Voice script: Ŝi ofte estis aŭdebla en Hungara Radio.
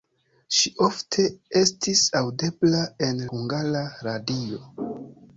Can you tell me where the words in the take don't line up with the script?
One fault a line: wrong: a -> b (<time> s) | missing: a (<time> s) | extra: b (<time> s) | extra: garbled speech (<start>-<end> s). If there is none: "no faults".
no faults